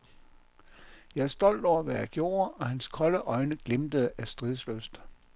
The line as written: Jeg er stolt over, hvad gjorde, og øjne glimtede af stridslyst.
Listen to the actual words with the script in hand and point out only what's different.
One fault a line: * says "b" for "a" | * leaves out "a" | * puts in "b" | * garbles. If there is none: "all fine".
* puts in "jeg"
* puts in "hans kolde"